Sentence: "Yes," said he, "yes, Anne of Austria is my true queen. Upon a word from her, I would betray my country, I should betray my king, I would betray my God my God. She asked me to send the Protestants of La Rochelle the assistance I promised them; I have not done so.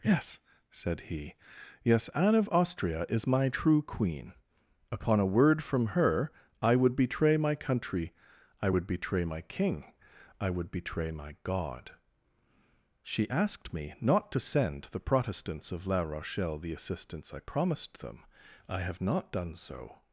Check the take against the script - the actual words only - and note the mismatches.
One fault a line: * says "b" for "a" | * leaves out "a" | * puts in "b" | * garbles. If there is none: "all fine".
* says "would" for "should"
* leaves out "my God"
* puts in "not"